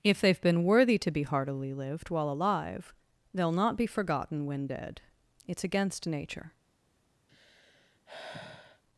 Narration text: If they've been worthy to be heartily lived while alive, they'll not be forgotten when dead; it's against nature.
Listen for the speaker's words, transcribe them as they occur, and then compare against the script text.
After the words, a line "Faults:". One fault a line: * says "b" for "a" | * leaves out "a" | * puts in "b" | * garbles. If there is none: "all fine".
If they've been worthy to be heartily lived while alive, they'll not be forgotten when dead; it's against nature.
Faults:
all fine